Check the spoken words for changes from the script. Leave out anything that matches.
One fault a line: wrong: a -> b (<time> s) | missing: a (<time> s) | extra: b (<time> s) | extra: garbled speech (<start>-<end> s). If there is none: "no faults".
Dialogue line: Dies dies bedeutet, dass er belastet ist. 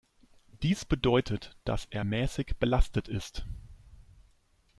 missing: dies (0.8 s)
extra: mäßig (2.0 s)